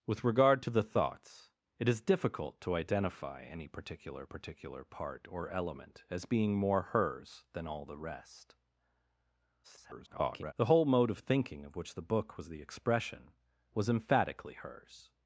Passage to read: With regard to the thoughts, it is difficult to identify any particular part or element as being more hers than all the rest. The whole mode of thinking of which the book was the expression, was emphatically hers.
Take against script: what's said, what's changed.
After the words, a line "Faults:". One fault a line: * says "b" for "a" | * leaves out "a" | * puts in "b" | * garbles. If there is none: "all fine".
With regard to the thoughts, it is difficult to identify any particular particular part or element as being more hers than all the rest. [garbled] The whole mode of thinking of which the book was the expression, was emphatically hers.
Faults:
* puts in "particular"
* garbles